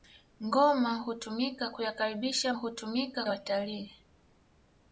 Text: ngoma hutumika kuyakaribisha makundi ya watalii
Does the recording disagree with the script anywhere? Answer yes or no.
yes